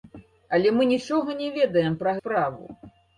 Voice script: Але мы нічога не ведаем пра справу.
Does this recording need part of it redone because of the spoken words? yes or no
no